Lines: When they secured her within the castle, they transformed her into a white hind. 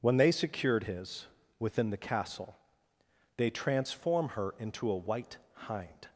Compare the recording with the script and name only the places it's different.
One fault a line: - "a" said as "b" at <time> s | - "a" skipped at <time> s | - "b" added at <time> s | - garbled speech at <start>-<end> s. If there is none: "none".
- "her" said as "his" at 0.8 s
- "transformed" said as "transform" at 3.5 s